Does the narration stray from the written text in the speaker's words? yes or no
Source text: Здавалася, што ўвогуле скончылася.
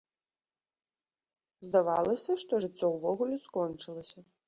yes